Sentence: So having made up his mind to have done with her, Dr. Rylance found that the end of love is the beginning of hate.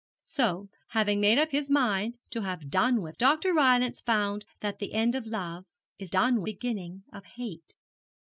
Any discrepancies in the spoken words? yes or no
yes